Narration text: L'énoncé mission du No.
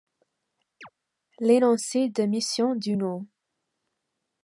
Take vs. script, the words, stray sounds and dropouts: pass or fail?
fail